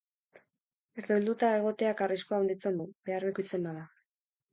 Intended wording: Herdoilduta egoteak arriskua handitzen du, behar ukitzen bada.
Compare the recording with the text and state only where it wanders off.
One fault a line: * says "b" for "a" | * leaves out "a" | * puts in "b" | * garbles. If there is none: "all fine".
all fine